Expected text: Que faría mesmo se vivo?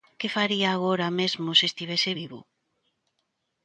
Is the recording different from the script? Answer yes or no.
yes